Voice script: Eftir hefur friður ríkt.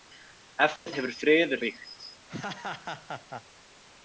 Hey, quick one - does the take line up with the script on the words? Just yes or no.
yes